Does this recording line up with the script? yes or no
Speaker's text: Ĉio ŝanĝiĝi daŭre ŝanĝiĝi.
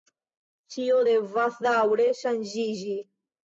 no